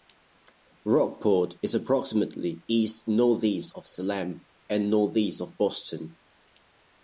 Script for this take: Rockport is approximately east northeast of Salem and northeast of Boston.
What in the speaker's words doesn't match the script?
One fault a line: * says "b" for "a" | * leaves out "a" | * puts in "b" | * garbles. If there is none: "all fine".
all fine